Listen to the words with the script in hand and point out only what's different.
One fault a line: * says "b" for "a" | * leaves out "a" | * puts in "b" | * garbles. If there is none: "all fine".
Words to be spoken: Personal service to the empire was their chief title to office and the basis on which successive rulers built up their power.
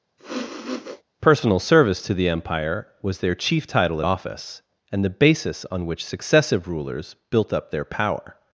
* says "at" for "to"